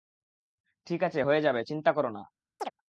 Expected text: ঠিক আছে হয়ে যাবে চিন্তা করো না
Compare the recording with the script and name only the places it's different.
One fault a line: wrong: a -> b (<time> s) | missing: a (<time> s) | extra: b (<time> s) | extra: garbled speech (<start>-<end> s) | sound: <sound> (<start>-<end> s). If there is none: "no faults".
sound: chirp (2.6-2.7 s)